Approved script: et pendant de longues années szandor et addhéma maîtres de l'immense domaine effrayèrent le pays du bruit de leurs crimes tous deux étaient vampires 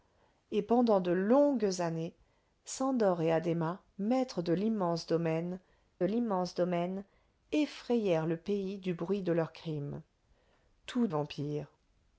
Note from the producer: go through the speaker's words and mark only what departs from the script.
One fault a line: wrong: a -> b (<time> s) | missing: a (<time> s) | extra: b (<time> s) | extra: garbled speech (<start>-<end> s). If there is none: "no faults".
extra: l'immense domaine (6.0 s)
missing: deux étaient (11.1 s)